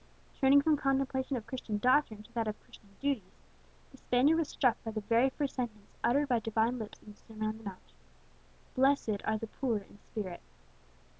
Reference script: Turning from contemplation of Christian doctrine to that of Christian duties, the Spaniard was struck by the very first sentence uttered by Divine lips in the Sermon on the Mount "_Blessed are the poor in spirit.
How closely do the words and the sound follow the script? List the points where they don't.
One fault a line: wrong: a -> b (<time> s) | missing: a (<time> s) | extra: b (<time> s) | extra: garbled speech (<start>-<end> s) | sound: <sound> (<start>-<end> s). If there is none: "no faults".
no faults